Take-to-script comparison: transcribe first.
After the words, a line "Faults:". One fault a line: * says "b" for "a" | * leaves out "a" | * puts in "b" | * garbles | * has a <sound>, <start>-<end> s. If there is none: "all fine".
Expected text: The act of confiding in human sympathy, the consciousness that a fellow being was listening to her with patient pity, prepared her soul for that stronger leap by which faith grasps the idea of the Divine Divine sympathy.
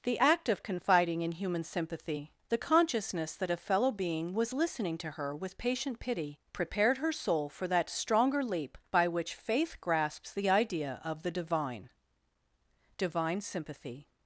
The act of confiding in human sympathy, the consciousness that a fellow being was listening to her with patient pity, prepared her soul for that stronger leap by which faith grasps the idea of the Divine Divine sympathy.
Faults:
all fine